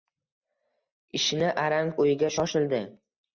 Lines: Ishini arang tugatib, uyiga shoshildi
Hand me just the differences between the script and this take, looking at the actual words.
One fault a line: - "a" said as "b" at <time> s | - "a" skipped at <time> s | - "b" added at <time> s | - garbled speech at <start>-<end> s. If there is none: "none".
- "tugatib" skipped at 1.9 s